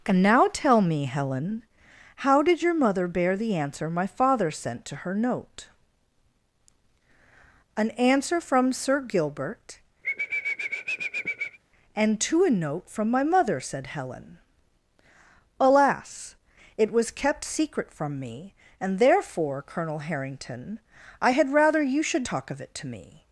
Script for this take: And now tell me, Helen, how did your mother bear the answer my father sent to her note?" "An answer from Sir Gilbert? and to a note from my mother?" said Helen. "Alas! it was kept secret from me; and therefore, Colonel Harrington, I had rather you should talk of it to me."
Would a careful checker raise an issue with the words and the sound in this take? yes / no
yes